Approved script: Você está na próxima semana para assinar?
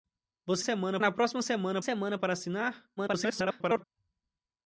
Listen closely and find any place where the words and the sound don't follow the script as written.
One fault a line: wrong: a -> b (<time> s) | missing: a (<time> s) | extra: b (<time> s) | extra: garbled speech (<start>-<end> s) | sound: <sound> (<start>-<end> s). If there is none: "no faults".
wrong: está -> semana (0.6 s)
extra: semana (1.8 s)
extra: garbled speech (3.0-3.8 s)